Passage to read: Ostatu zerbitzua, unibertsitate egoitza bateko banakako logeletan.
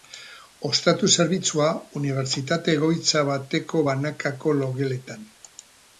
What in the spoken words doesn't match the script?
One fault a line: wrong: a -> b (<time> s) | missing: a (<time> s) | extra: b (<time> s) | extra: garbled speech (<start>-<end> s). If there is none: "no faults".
no faults